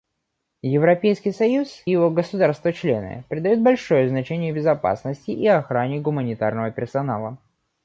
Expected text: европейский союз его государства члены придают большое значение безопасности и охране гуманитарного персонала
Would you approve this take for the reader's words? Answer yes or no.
yes